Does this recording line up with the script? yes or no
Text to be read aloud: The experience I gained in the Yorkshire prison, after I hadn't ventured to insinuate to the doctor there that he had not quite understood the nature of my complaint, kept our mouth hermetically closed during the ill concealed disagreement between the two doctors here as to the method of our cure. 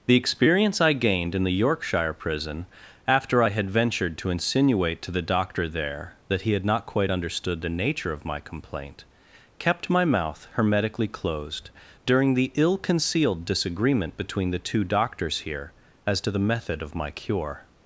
no